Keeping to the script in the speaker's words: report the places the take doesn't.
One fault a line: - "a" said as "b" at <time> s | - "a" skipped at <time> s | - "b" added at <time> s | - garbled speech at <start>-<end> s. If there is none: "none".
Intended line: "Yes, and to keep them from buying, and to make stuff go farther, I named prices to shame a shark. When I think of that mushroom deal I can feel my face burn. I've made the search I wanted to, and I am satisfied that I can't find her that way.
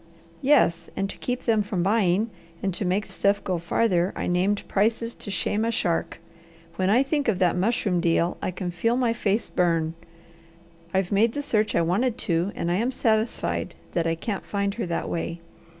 none